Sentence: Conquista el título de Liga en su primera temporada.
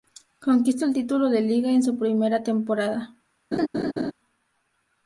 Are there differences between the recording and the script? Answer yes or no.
no